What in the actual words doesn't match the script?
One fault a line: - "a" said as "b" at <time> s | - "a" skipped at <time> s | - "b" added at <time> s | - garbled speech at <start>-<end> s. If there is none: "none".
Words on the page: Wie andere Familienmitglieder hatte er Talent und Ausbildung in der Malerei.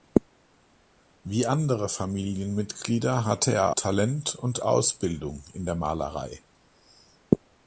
none